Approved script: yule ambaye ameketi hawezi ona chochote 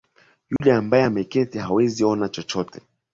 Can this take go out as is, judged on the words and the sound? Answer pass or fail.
fail